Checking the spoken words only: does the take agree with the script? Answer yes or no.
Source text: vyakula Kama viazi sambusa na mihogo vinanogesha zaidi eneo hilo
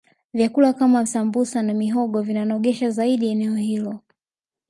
no